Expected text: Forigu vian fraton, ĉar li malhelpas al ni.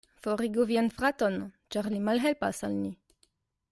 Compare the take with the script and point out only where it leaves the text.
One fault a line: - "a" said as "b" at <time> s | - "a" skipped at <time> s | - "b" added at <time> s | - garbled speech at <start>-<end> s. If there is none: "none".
none